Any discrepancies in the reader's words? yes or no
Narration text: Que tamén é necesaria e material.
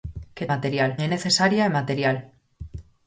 yes